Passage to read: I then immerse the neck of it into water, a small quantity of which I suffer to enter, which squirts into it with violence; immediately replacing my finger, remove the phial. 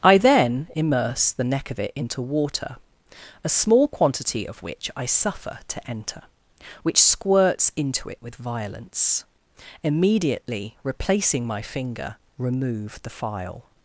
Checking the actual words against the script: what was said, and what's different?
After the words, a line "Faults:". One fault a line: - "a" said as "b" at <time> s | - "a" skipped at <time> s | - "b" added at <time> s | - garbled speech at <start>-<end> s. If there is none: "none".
I then immerse the neck of it into water, a small quantity of which I suffer to enter, which squirts into it with violence; immediately replacing my finger, remove the phial.
Faults:
none